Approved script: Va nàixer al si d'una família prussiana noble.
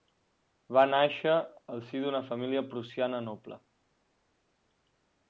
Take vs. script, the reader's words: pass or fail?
pass